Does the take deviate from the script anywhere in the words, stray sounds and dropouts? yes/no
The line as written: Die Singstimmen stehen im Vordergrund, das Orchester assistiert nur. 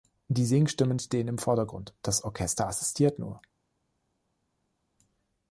no